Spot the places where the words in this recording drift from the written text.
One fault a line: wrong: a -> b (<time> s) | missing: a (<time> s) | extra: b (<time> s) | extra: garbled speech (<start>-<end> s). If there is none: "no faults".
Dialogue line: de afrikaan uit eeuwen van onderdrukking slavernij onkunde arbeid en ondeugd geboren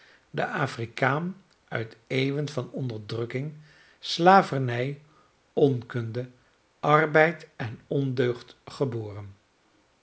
no faults